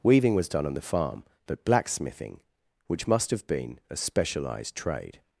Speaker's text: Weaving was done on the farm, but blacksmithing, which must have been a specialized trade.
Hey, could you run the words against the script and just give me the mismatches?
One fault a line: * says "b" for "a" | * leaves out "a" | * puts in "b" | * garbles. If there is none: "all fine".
all fine